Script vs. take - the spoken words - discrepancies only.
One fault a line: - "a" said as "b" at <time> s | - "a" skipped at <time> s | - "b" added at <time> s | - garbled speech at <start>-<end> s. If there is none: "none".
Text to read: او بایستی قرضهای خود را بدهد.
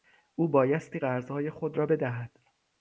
none